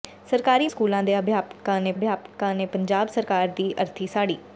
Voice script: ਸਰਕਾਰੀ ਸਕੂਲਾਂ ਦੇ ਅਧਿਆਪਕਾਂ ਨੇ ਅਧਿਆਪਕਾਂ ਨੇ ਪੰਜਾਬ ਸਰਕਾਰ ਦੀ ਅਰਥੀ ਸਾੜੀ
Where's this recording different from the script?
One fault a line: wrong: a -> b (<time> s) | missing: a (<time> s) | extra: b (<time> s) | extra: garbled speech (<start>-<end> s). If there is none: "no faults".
no faults